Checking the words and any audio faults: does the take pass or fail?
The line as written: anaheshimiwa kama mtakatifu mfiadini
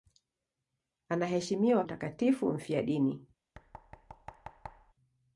fail